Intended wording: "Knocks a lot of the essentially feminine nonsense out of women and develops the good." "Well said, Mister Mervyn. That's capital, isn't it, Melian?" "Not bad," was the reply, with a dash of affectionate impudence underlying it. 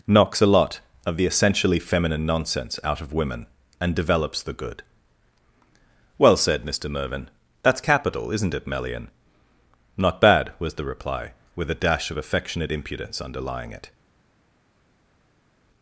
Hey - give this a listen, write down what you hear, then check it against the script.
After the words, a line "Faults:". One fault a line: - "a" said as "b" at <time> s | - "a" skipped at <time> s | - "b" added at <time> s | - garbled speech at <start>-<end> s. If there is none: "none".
"Knocks a lot of the essentially feminine nonsense out of women and develops the good." "Well said, Mister Mervyn. That's capital, isn't it, Melian?" "Not bad," was the reply, with a dash of affectionate impudence underlying it.
Faults:
none